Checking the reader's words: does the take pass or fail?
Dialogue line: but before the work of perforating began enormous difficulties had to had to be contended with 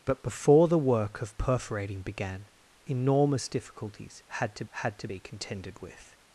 pass